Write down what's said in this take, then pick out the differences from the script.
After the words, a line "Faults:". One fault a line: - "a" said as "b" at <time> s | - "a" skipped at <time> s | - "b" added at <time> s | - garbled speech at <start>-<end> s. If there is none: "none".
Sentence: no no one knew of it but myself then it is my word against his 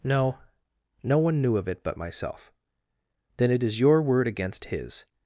no no one knew of it but myself then it is your word against his
Faults:
- "my" said as "your" at 3.8 s